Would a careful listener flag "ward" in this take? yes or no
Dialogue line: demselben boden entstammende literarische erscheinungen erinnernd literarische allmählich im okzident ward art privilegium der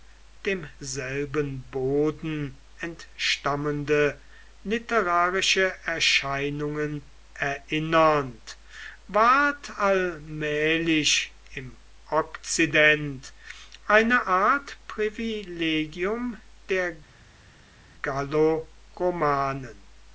yes